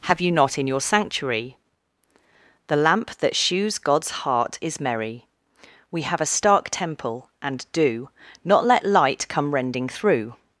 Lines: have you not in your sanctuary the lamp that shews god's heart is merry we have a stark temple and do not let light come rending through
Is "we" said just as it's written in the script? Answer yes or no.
yes